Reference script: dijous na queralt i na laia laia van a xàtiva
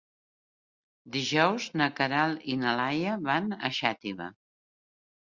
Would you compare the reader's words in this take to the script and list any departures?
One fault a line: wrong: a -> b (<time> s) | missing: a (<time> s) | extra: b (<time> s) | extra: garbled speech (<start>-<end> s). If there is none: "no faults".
missing: laia (3.2 s)